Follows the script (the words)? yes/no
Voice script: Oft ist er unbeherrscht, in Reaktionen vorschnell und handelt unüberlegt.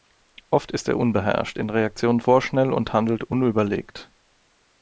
yes